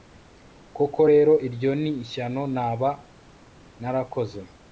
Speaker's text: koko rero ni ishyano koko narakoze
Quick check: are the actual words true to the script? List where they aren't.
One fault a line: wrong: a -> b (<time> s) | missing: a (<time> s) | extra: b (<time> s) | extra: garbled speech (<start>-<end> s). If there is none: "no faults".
extra: iryo (1.5 s)
wrong: koko -> naba (2.6 s)